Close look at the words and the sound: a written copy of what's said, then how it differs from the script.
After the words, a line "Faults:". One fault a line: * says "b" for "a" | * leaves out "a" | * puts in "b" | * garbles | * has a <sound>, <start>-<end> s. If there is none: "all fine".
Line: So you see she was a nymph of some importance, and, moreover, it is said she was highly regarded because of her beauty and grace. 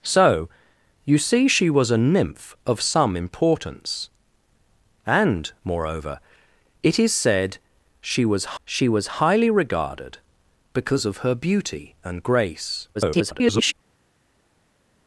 So you see she was a nymph of some importance, and, moreover, it is said she was she was highly regarded because of her beauty and grace. [garbled]
Faults:
* puts in "she was"
* garbles